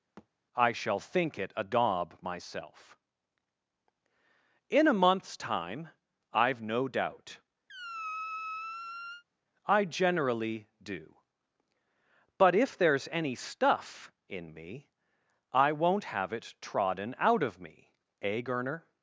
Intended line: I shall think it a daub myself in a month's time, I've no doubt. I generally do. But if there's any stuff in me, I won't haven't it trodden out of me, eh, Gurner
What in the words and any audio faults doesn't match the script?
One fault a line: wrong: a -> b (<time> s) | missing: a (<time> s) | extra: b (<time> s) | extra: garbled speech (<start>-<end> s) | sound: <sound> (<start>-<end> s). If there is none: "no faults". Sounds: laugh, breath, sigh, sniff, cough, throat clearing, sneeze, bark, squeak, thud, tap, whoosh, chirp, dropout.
sound: thud (0.2-0.3 s)
sound: squeak (7.7-9.2 s)
wrong: haven't -> have (16.0 s)